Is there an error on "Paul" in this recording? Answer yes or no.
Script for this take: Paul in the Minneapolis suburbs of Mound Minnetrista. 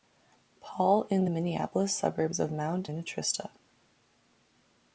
no